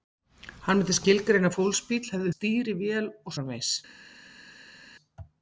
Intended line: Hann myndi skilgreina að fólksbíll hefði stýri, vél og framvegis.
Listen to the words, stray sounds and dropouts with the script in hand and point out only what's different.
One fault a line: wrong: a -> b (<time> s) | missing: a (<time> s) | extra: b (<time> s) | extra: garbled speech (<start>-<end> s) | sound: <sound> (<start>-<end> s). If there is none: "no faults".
no faults